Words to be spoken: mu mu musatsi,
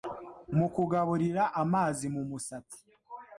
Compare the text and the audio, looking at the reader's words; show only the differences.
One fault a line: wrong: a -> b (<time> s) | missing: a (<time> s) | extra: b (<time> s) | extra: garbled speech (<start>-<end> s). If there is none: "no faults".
extra: kugaburira amazi (0.8 s)